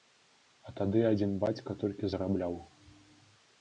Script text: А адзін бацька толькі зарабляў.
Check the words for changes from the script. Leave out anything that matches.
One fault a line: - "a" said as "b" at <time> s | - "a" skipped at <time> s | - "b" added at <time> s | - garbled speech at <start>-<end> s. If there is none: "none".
- "тады" added at 0.8 s